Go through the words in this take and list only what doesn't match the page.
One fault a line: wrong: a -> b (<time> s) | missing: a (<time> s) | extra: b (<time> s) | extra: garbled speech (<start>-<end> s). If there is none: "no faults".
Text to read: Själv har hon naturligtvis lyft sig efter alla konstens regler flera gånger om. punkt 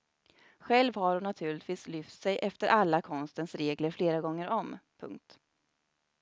no faults